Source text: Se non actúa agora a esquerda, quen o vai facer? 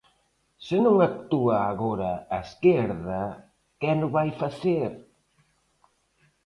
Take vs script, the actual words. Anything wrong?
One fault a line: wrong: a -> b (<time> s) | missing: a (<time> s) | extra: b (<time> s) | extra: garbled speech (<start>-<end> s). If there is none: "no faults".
no faults